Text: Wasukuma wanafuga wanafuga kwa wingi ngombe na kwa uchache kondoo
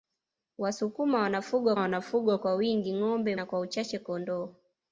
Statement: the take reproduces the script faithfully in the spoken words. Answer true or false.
true